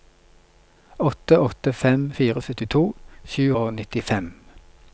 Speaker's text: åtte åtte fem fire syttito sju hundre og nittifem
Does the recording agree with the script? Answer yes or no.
no